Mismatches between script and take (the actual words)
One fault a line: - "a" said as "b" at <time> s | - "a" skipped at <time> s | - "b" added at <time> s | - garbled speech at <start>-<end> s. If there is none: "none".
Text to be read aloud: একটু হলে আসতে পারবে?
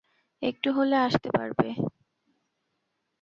none